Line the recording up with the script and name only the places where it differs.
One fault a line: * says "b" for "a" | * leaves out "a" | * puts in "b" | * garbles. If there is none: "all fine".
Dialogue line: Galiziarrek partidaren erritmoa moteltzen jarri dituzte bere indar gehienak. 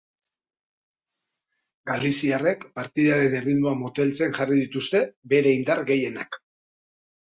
all fine